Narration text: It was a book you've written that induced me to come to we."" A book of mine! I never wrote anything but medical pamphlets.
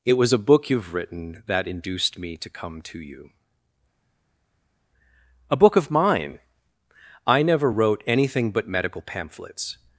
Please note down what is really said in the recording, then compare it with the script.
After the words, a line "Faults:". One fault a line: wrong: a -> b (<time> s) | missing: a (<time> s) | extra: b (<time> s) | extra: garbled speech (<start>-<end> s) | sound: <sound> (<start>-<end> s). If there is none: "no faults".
It was a book you've written that induced me to come to you."" A book of mine! I never wrote anything but medical pamphlets.
Faults:
wrong: we -> you (3.0 s)